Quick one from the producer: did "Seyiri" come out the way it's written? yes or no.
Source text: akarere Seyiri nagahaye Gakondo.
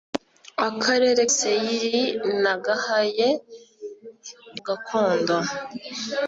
yes